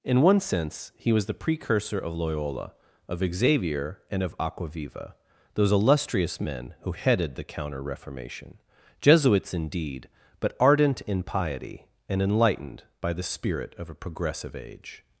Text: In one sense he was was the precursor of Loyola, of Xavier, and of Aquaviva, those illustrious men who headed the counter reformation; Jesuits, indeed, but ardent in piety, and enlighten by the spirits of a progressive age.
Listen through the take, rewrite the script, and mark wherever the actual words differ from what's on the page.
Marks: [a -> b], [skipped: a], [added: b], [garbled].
In one sense he was [skipped: was] the precursor of Loyola, of Xavier, and of Aquaviva, those illustrious men who headed the counter reformation; Jesuits, indeed, but ardent in piety, and [enlighten -> enlightened] by the [spirits -> spirit] of a progressive age.